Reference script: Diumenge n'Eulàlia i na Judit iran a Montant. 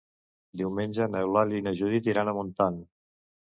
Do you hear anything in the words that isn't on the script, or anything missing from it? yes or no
no